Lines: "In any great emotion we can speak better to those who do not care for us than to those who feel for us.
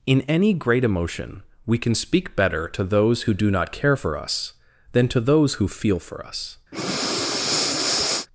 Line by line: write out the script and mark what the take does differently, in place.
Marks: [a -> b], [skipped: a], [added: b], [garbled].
"In any great emotion we can speak better to those who do not care for us than to those who feel for us.